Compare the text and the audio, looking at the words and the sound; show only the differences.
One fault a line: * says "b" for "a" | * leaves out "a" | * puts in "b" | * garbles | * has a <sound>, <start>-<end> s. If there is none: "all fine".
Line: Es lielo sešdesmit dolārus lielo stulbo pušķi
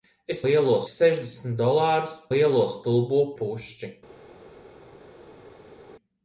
all fine